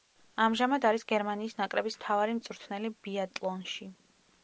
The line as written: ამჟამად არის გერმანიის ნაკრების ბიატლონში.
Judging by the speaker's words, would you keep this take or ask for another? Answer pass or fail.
fail